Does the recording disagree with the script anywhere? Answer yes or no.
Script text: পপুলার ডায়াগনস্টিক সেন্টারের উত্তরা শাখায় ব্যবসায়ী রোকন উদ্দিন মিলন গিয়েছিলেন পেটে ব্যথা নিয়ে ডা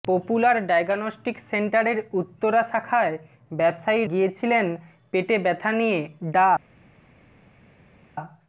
yes